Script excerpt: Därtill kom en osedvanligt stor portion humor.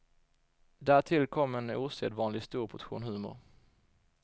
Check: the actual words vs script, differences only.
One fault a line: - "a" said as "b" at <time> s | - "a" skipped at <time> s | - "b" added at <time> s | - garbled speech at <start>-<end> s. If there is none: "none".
none